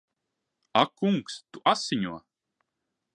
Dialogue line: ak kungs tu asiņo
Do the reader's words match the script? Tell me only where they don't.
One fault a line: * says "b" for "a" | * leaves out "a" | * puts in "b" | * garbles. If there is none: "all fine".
all fine